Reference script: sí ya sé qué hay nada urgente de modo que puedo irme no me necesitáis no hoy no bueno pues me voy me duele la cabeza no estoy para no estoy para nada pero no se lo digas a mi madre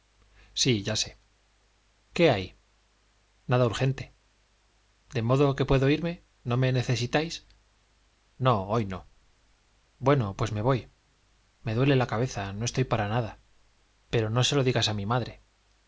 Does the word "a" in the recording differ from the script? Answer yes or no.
no